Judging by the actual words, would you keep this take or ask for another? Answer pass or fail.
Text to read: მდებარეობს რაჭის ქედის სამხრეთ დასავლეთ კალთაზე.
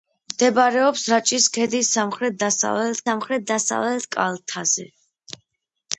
fail